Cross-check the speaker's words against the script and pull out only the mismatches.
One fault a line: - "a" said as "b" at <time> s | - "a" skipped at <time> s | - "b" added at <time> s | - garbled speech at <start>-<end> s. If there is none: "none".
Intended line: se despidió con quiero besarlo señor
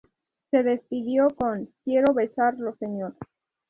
none